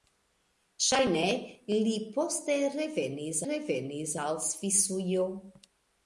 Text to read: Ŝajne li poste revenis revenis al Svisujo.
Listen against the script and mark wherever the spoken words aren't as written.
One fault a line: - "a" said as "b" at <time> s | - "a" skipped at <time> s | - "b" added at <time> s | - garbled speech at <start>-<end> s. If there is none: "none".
none